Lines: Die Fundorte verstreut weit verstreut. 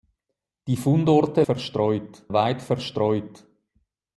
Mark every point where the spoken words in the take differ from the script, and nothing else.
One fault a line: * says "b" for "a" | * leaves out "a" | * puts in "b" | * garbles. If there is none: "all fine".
all fine